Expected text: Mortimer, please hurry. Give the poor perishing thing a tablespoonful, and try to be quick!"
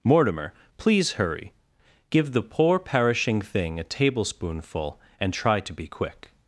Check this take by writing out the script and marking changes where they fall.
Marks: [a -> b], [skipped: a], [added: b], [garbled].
Mortimer, please hurry. Give the poor perishing thing a tablespoonful, and try to be quick!"